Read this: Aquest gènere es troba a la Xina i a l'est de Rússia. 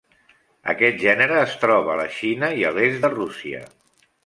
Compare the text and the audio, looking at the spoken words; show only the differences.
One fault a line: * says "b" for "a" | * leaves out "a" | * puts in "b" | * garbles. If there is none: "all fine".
all fine